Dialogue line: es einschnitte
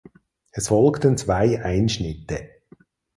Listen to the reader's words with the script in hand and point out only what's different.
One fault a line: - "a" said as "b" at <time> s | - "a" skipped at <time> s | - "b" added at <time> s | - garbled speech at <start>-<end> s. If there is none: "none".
- "folgten zwei" added at 0.6 s